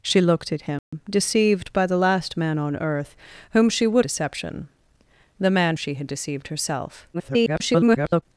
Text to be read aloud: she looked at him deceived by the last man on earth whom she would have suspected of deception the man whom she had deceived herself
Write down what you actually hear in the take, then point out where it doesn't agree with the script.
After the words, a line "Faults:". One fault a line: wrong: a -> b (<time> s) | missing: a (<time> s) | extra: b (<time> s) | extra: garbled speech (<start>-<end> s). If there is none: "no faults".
she looked at him deceived by the last man on earth whom she would deception the man she had deceived herself [garbled]
Faults:
missing: have suspected of (4.0 s)
missing: whom (5.8 s)
extra: garbled speech (7.1-8.2 s)